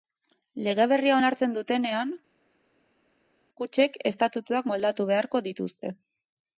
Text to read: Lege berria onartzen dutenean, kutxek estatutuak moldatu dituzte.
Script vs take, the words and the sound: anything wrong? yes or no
yes